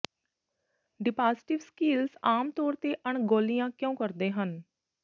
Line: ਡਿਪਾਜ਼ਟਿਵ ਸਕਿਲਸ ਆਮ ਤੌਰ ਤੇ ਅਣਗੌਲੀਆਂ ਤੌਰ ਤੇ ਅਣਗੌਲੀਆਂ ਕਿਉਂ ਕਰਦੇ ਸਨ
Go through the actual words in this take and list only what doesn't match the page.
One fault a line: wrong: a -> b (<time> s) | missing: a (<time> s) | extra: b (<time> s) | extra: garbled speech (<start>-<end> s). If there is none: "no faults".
missing: ਤੌਰ ਤੇ ਅਣਗੌਲੀਆਂ (3.7 s)
wrong: ਸਨ -> ਹਨ (4.3 s)